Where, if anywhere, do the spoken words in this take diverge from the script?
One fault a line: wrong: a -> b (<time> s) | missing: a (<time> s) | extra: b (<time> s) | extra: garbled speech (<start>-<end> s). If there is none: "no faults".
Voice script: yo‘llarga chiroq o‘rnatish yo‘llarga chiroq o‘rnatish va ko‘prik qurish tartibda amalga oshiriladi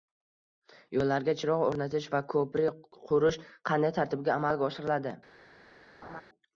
missing: yo‘llarga chiroq o‘rnatish (2.1 s)
extra: qanday (3.7 s)